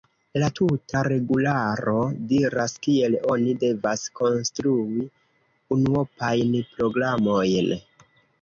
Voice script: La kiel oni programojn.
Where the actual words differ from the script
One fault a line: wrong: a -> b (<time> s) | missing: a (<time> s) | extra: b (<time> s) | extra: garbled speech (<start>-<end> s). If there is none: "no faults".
extra: tuta regularo diras (0.6 s)
extra: devas konstrui unuopajn (3.6 s)